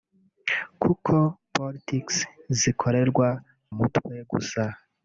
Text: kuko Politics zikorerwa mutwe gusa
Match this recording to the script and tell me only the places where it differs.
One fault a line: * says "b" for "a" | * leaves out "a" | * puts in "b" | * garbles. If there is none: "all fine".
all fine